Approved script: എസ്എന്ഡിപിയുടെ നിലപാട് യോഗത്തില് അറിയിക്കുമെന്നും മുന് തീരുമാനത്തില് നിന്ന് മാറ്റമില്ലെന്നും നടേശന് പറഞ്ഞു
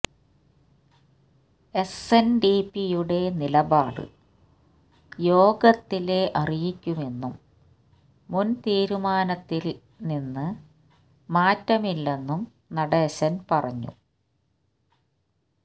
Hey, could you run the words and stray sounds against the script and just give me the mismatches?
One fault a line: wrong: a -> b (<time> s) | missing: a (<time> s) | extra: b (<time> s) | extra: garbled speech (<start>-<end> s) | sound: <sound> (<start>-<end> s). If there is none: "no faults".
no faults